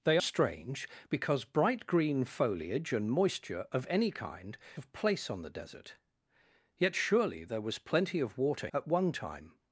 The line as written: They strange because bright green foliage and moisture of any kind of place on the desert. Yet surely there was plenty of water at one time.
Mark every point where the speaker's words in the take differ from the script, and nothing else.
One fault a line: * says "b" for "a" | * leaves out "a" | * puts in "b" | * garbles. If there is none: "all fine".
all fine